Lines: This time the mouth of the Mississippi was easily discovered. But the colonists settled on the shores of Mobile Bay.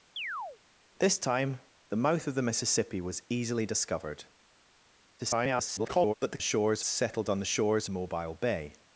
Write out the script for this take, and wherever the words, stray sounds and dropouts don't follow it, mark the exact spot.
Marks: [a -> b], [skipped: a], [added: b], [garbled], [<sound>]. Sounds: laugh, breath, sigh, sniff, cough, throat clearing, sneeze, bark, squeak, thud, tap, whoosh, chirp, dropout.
[chirp] This time the mouth of the Mississippi was easily discovered. [garbled] But the [colonists -> shores] settled on the shores [skipped: of] Mobile Bay.